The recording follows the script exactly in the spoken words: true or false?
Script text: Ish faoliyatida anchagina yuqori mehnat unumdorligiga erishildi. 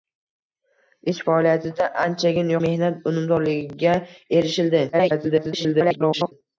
false